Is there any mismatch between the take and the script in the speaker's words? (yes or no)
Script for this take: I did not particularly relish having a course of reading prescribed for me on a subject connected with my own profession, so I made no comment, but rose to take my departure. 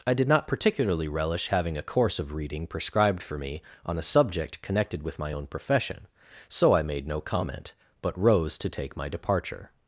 no